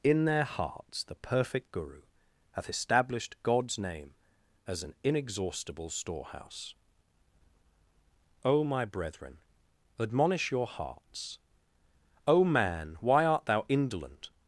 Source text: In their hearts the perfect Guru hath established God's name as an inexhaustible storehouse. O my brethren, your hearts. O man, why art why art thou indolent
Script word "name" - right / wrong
right